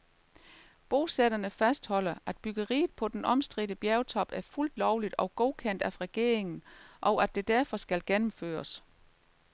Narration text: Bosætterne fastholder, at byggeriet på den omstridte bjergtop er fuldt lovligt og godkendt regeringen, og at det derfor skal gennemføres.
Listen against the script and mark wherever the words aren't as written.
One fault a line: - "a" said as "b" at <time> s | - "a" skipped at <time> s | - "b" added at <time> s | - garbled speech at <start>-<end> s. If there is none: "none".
- "af" added at 5.8 s